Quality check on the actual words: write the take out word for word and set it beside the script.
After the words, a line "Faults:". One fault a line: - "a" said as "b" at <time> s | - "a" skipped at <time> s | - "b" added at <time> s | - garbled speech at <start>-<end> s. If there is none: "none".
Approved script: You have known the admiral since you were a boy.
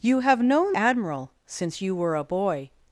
You have known admiral since you were a boy.
Faults:
- "the" skipped at 0.8 s